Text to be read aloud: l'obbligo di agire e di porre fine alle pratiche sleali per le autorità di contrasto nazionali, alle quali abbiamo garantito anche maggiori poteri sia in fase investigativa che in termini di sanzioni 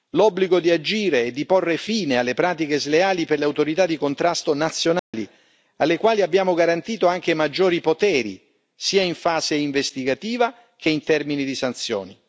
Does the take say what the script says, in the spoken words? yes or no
yes